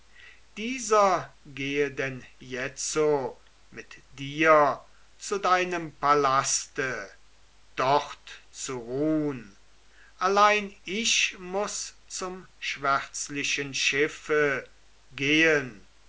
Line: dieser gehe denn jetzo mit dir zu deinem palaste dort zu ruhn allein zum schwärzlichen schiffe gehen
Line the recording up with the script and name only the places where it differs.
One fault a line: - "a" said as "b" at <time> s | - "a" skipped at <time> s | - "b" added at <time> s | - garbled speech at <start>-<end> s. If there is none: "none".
- "ich muß" added at 10.8 s